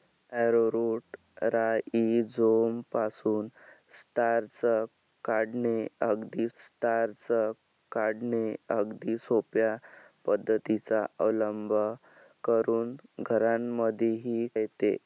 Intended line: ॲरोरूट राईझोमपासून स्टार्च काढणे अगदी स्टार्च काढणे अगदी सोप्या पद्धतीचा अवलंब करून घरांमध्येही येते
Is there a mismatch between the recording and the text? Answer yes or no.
no